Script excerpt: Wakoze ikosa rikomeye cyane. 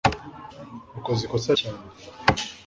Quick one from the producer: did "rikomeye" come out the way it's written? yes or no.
no